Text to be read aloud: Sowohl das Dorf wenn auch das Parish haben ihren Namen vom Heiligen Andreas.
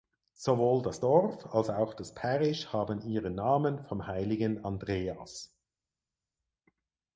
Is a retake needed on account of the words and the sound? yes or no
yes